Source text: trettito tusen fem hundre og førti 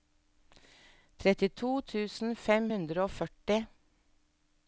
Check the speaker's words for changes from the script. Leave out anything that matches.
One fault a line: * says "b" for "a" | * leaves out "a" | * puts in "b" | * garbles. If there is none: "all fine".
all fine